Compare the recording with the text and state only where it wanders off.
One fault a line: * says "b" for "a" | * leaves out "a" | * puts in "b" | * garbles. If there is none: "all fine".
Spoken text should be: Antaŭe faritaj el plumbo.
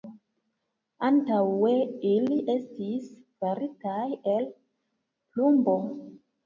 * puts in "ili estis"